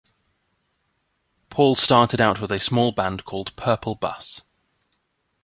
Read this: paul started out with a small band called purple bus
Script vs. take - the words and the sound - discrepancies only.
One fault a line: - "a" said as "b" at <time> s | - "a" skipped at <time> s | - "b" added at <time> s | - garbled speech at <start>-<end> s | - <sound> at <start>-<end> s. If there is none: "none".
none